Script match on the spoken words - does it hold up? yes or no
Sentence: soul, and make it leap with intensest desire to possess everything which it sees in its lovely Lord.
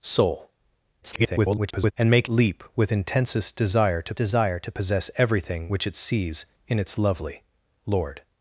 no